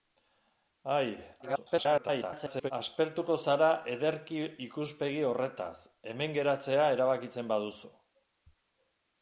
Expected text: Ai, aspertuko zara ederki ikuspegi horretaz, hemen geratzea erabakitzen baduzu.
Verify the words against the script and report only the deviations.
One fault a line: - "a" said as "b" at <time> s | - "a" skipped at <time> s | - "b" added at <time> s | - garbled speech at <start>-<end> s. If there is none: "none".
- garbled speech at 1.4-2.7 s